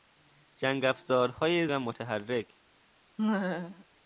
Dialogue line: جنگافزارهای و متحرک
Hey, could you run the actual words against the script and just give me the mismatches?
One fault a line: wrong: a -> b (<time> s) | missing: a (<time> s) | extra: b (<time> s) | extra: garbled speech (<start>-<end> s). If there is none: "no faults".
no faults